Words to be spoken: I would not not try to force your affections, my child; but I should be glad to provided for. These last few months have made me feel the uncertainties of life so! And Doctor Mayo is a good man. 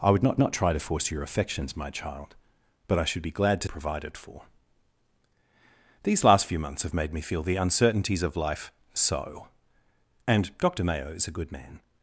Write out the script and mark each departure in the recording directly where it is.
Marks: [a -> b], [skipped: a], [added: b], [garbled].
I would not not try to force your affections, my child; but I should be glad to provided for. These last few months have made me feel the uncertainties of life so! And Doctor Mayo is a good man.